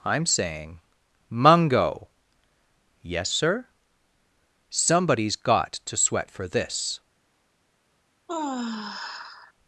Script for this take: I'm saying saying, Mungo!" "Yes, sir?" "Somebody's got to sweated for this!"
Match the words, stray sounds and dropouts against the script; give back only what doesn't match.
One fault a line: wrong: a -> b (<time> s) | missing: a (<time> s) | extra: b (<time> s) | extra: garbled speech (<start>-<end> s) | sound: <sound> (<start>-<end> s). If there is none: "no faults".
missing: saying (0.8 s)
wrong: sweated -> sweat (6.0 s)
sound: sigh (8.3-9.5 s)